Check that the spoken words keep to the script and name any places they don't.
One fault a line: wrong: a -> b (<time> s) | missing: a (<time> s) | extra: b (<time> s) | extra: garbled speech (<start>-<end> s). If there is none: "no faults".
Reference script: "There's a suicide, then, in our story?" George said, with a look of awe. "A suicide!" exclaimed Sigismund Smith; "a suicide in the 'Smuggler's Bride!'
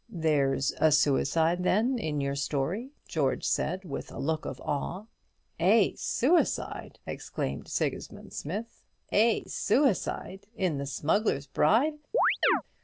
wrong: our -> your (2.2 s)